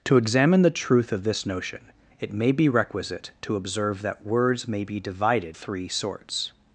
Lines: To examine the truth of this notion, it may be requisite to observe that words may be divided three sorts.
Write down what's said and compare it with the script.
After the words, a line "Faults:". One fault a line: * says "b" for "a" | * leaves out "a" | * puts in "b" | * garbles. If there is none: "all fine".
To examine the truth of this notion, it may be requisite to observe that words may be divided three sorts.
Faults:
all fine